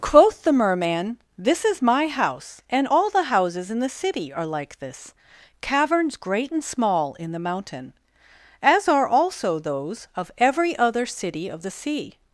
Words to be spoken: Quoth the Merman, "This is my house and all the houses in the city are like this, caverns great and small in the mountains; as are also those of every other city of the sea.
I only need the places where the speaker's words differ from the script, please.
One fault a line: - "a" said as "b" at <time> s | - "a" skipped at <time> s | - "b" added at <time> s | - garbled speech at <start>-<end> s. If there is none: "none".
- "mountains" said as "mountain" at 7.4 s